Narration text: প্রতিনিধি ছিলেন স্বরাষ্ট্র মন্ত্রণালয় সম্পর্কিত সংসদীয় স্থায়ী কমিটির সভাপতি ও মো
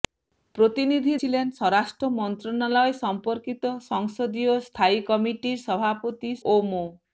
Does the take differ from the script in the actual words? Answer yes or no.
no